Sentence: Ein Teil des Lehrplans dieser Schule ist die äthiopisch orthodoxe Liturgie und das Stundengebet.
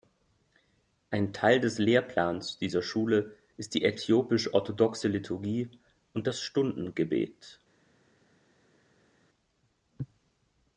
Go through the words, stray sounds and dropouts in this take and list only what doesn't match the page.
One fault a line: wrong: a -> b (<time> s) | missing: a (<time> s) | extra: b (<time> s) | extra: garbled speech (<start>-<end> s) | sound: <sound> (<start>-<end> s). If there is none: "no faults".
no faults